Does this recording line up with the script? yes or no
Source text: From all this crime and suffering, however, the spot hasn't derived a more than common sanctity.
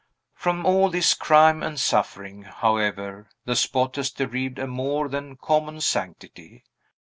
no